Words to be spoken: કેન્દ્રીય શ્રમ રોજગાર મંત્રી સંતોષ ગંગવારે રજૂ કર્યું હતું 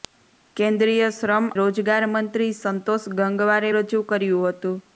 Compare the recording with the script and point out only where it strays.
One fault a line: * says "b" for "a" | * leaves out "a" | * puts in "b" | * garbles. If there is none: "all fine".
all fine